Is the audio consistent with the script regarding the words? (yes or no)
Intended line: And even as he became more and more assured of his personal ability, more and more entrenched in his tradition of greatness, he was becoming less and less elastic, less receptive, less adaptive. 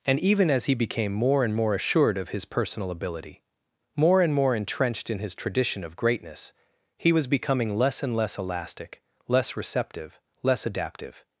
yes